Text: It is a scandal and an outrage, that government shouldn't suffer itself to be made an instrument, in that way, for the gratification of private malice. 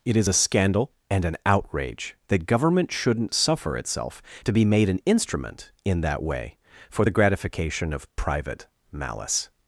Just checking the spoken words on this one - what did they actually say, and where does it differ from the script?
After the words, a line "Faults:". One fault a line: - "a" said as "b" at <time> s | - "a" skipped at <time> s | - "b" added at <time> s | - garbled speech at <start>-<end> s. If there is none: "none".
It is a scandal and an outrage, that government shouldn't suffer itself to be made an instrument, in that way, for the gratification of private malice.
Faults:
none